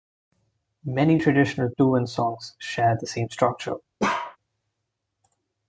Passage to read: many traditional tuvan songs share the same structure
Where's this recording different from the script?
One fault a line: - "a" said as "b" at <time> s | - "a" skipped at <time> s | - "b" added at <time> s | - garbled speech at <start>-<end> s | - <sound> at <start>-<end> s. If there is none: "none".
- bark at 4.0-4.4 s